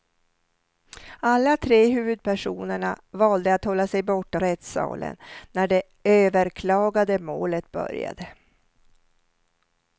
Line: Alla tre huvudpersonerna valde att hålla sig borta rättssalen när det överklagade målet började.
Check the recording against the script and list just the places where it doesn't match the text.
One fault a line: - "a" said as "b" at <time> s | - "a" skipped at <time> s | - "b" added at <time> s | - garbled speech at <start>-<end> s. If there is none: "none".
none